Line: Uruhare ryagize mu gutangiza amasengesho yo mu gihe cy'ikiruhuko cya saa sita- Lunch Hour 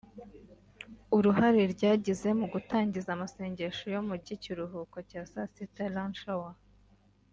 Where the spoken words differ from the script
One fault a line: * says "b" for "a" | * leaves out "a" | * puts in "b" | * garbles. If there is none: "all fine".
* leaves out "gihe"